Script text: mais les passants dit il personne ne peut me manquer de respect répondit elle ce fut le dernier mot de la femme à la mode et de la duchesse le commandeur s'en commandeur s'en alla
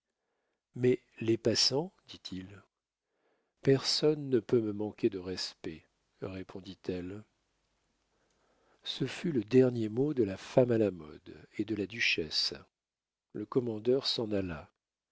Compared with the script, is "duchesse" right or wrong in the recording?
right